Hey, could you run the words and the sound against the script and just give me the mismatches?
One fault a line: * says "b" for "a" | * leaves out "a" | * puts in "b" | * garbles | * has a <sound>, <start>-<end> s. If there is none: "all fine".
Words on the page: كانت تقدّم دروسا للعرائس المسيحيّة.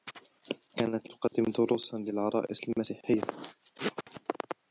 * has a dropout, 1.3-1.3 s